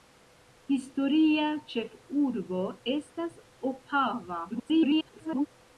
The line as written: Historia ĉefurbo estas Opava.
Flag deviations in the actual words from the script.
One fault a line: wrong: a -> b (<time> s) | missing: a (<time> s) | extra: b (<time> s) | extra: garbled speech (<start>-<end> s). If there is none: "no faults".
extra: garbled speech (4.5-5.5 s)